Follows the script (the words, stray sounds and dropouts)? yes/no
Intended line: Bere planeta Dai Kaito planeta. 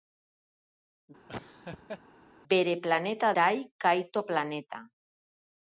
no